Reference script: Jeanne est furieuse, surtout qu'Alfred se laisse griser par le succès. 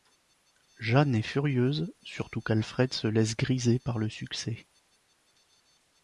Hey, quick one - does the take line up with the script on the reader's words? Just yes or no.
yes